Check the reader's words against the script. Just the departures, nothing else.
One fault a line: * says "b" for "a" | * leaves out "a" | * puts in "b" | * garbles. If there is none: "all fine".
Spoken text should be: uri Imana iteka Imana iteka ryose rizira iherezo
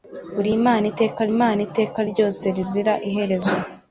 all fine